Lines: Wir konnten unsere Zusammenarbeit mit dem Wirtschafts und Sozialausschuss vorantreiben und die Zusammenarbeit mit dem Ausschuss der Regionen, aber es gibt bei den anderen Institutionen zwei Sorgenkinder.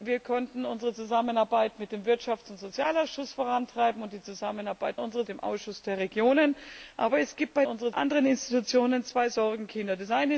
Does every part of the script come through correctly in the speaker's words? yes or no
no